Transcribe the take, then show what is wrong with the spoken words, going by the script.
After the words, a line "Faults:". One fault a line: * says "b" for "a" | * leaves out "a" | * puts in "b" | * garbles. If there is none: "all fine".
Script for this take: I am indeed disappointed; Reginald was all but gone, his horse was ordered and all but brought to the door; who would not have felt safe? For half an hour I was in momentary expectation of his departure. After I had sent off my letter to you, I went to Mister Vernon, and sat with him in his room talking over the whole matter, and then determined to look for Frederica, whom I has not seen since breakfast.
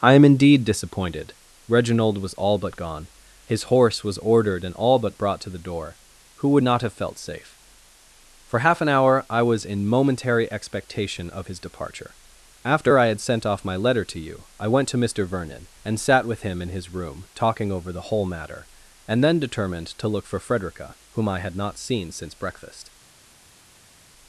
I am indeed disappointed; Reginald was all but gone, his horse was ordered and all but brought to the door; who would not have felt safe? For half an hour I was in momentary expectation of his departure. After I had sent off my letter to you, I went to Mister Vernon, and sat with him in his room talking over the whole matter, and then determined to look for Frederica, whom I had not seen since breakfast.
Faults:
* says "had" for "has"